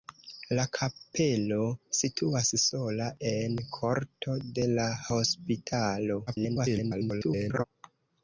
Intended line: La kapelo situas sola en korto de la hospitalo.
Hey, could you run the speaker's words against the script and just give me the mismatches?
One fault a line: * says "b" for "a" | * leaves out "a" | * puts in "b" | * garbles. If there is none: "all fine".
* garbles